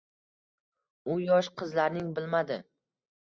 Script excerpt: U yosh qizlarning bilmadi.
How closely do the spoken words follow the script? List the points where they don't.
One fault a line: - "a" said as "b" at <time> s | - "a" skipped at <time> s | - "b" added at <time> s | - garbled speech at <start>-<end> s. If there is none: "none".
none